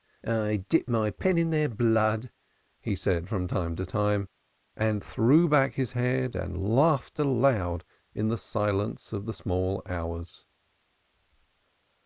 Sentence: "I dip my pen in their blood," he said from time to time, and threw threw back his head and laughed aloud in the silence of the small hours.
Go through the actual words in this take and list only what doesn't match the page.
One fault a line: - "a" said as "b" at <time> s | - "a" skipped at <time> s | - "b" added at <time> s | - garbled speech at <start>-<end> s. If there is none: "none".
- "threw" skipped at 5.5 s